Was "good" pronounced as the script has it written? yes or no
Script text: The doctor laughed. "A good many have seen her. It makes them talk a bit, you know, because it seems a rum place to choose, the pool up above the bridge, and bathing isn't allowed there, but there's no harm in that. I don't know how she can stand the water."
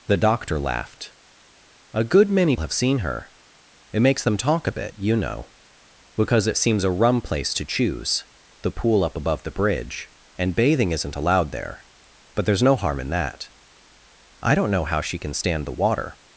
yes